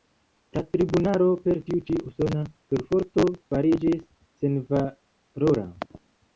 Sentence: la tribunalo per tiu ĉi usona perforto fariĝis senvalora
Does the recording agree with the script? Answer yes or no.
yes